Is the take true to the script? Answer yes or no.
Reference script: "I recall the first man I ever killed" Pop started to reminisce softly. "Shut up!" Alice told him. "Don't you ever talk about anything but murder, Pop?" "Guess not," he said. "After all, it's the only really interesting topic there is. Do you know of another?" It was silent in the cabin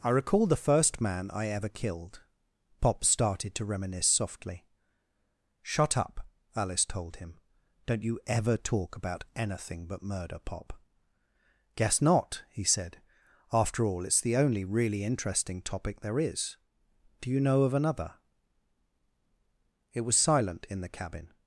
yes